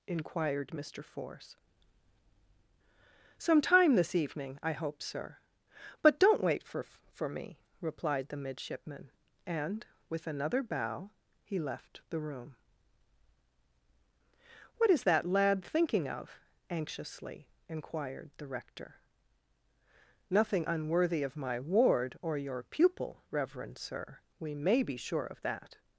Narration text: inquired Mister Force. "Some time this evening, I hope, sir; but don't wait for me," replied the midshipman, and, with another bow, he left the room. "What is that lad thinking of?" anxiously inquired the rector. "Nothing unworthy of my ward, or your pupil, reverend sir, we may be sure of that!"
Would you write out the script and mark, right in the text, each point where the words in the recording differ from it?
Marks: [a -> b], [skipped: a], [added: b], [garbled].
inquired Mister Force. "Some time this evening, I hope, sir; but don't wait for [added: for] me," replied the midshipman, and, with another bow, he left the room. "What is that lad thinking of?" anxiously inquired the rector. "Nothing unworthy of my ward, or your pupil, reverend sir, we may be sure of that!"